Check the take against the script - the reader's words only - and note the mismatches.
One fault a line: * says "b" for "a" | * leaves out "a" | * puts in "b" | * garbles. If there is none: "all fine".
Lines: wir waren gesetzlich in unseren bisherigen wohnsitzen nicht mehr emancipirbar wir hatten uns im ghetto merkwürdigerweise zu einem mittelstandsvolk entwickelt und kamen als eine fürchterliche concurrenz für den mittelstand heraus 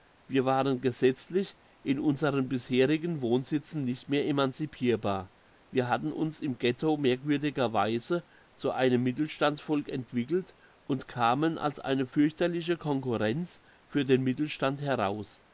all fine